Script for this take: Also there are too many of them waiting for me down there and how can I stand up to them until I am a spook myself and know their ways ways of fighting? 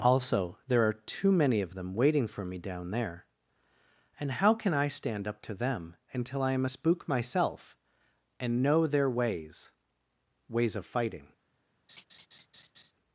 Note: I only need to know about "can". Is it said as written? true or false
true